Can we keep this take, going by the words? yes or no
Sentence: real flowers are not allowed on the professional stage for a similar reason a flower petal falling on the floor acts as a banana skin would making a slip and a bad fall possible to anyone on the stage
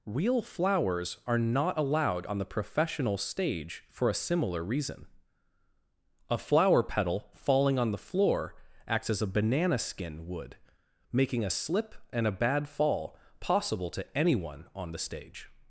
yes